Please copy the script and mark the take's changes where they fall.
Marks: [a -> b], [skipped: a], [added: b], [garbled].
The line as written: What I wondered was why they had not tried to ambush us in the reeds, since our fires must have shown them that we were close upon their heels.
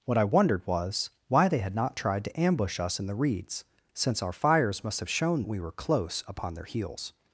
What I wondered was why they had not tried to ambush us in the reeds, since our fires must have shown [skipped: them that] we were close upon their heels.